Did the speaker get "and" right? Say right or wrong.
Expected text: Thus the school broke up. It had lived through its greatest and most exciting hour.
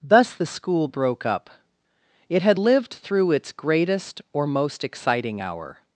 wrong